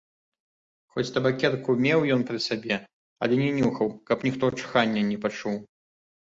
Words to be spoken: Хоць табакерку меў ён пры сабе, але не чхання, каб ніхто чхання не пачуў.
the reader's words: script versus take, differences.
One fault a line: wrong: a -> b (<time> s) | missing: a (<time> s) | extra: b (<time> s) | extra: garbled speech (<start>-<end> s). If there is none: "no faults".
wrong: чхання -> нюхаў (3.6 s)